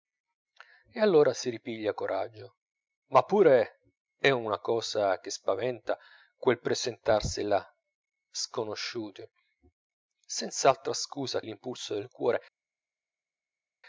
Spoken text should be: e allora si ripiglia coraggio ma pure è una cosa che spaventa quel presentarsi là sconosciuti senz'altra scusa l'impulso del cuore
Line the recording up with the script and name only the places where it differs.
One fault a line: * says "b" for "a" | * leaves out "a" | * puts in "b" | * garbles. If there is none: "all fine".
all fine